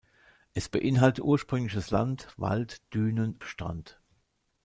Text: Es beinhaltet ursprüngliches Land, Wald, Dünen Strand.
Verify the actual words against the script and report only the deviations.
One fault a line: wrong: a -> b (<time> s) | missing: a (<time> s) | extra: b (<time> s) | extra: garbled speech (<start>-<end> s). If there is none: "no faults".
no faults